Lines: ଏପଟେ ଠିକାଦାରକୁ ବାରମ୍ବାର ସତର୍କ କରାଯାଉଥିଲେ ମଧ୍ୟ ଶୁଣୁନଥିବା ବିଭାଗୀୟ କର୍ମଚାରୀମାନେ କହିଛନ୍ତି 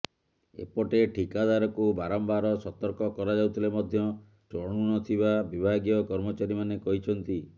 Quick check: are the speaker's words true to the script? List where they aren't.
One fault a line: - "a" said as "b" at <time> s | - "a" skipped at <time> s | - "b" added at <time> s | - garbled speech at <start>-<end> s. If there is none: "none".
none